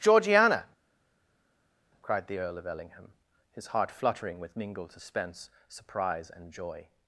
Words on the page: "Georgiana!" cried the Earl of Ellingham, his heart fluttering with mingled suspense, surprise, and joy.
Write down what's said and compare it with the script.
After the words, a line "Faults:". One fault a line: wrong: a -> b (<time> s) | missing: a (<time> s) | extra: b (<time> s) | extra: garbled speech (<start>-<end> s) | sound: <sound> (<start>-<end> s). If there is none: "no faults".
"Georgiana!" cried the Earl of Ellingham, his heart fluttering with mingled suspense, surprise, and joy.
Faults:
no faults